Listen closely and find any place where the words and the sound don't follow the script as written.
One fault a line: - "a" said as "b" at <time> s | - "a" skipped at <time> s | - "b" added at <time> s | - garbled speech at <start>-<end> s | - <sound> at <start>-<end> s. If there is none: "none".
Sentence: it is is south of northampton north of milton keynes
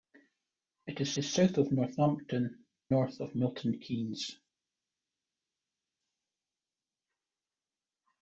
none